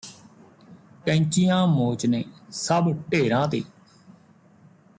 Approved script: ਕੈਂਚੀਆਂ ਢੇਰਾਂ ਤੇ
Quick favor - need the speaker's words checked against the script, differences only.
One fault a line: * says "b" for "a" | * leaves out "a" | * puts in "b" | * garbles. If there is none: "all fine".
* puts in "ਮੋਚਨੇ ਸਭ"